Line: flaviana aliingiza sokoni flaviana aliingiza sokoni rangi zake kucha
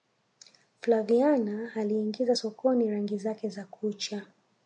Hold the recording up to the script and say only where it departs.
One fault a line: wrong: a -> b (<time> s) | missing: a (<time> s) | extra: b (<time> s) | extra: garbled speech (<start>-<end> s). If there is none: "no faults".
missing: flaviana aliingiza sokoni (2.9 s)
extra: za (3.5 s)